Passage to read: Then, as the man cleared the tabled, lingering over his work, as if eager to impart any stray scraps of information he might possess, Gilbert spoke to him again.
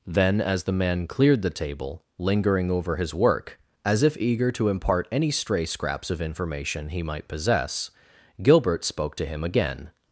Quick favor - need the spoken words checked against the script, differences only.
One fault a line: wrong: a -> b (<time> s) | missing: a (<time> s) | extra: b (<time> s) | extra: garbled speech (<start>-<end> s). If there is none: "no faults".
wrong: tabled -> table (1.5 s)